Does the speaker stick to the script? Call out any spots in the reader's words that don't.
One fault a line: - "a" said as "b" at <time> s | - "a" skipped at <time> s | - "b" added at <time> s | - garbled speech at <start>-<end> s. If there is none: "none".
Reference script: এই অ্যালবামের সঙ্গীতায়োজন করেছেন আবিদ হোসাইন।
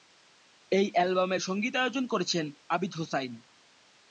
none